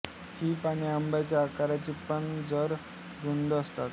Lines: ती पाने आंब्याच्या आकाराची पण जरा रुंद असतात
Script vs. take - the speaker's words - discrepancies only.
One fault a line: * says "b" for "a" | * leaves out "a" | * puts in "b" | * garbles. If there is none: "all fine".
* says "ही" for "ती"